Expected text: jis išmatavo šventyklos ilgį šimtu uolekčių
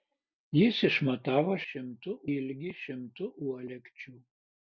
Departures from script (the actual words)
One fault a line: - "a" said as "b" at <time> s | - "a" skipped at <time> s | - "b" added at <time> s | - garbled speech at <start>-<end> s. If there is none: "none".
- "šventyklos" said as "šimtu" at 1.7 s